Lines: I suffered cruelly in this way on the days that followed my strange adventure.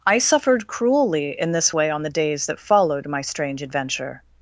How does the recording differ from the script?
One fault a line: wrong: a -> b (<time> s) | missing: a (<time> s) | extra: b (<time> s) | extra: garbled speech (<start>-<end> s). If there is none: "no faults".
no faults